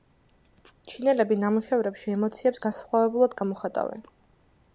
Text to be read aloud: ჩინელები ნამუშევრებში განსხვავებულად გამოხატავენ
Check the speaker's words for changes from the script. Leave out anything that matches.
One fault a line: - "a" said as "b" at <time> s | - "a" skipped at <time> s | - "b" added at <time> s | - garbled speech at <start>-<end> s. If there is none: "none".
- "ემოციებს" added at 2.1 s